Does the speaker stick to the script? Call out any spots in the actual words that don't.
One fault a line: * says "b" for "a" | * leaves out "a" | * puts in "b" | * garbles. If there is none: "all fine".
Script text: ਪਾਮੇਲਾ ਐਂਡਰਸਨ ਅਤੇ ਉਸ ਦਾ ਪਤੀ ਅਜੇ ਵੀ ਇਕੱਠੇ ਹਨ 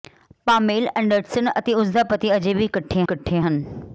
* puts in "ਇਕੱਠੇ"